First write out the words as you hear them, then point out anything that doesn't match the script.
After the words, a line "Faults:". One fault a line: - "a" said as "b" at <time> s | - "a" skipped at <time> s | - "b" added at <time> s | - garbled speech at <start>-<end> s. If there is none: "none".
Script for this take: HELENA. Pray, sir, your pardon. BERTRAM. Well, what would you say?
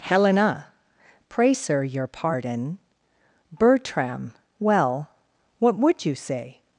HELENA. Pray, sir, your pardon. BERTRAM. Well, what would you say?
Faults:
none